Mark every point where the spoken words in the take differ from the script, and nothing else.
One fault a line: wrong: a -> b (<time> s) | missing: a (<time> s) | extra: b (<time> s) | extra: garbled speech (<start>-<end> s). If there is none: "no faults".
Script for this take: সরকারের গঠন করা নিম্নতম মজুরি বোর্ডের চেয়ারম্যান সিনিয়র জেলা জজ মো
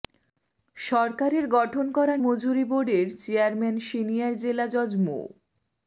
missing: নিম্নতম (2.1 s)